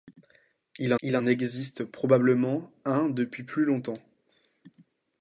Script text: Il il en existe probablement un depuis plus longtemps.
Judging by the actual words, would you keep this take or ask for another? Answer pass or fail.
pass